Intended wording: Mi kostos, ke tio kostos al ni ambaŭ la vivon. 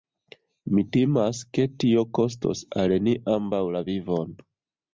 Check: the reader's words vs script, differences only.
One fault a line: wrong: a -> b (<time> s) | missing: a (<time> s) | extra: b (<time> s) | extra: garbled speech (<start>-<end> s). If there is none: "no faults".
wrong: kostos -> timas (1.0 s)